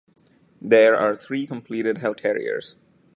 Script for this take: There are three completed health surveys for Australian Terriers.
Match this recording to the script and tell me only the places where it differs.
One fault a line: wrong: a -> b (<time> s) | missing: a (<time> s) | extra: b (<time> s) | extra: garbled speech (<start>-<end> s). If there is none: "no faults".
missing: surveys for Australian (2.2 s)